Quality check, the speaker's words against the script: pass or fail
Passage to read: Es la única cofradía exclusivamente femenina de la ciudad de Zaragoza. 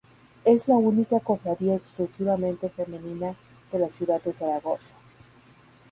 pass